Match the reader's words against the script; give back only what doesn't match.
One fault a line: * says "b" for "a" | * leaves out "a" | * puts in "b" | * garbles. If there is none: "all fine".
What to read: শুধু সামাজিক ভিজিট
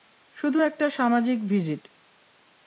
* puts in "একটা"